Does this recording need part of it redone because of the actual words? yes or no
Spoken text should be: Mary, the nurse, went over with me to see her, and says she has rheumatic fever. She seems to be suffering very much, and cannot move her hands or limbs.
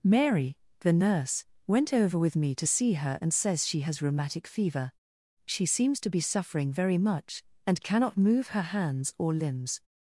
no